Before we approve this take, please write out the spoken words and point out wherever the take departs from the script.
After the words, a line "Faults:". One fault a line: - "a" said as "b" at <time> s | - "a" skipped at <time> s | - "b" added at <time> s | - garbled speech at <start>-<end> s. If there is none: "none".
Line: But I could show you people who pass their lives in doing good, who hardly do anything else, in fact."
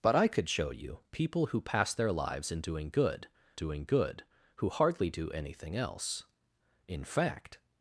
But I could show you people who pass their lives in doing good doing good, who hardly do anything else, in fact."
Faults:
- "doing good" added at 3.5 s